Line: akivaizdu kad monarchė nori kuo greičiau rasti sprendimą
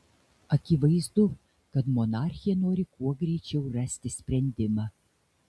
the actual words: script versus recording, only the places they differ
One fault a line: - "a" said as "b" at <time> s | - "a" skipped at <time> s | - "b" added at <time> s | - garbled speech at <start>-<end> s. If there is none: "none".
none